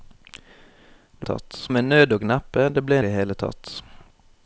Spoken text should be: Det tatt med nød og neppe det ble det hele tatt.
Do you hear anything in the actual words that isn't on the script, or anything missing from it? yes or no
no